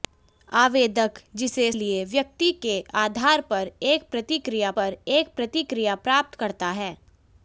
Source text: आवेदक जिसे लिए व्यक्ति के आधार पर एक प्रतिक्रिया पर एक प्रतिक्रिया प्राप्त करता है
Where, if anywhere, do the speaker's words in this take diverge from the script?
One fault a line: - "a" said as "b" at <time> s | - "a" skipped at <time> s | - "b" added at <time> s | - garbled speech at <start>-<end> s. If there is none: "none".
none